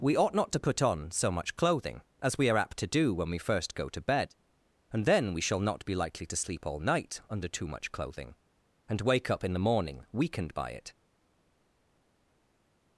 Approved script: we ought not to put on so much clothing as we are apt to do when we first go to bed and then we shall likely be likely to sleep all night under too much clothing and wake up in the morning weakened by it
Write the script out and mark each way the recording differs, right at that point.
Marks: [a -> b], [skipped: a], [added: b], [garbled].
we ought not to put on so much clothing as we are apt to do when we first go to bed and then we shall [likely -> not] be likely to sleep all night under too much clothing and wake up in the morning weakened by it